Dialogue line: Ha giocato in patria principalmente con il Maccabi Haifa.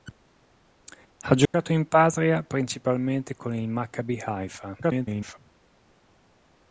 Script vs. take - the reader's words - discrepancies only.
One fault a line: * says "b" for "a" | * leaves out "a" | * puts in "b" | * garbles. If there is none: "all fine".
* garbles